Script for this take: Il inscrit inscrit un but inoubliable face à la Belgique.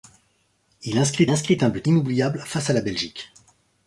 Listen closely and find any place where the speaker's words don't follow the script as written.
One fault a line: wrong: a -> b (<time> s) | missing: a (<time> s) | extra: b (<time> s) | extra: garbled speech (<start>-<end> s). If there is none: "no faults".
no faults